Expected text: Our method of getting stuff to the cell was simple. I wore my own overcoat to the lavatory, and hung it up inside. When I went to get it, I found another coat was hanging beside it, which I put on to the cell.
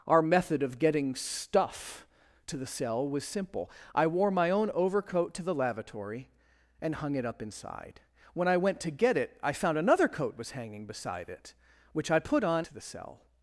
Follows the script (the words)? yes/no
yes